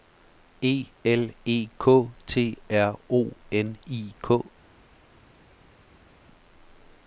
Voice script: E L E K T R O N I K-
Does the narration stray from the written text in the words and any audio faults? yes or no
no